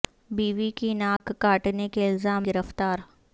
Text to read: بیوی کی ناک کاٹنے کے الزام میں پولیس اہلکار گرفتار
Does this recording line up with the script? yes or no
no